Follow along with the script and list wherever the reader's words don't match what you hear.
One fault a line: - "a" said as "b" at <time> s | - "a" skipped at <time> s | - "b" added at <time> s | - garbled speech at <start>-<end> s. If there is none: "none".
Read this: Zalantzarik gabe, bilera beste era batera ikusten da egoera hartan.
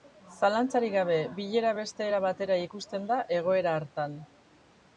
none